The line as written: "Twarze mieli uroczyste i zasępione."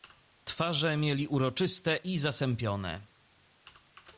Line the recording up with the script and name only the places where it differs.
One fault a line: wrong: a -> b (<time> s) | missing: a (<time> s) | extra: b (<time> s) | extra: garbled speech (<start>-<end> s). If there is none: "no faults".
no faults